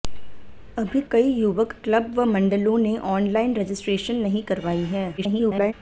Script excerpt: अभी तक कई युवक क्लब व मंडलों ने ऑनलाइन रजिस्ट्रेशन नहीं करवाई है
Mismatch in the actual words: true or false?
true